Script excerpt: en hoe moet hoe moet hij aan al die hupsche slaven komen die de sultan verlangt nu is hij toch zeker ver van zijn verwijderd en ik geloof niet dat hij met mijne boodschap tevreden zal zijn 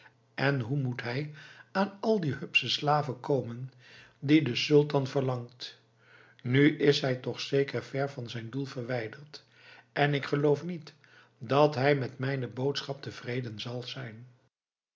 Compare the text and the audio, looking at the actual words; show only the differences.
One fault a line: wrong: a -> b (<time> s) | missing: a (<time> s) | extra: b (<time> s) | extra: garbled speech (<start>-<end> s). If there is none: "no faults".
missing: hoe moet (1.0 s)
extra: doel (8.5 s)